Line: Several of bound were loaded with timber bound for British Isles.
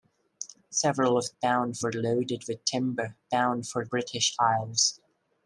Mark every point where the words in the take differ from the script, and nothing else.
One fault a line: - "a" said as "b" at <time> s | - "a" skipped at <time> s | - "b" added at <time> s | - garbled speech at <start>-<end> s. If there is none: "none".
none